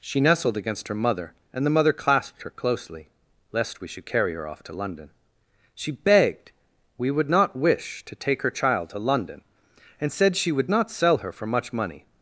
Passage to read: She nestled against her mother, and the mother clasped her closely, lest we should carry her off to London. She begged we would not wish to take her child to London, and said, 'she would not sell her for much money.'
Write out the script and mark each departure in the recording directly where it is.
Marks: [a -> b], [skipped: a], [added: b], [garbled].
She nestled against her mother, and the mother clasped her closely, lest we should carry her off to London. She begged we would not wish to take her child to London, and said, 'she would not sell her for much money.'